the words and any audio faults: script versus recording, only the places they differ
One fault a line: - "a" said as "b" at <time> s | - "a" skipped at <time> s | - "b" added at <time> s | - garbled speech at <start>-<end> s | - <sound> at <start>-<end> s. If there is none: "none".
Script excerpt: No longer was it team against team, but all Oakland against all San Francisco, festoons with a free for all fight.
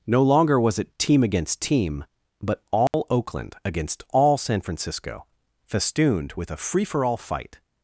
- dropout at 2.9-2.9 s
- "festoons" said as "festooned" at 5.7 s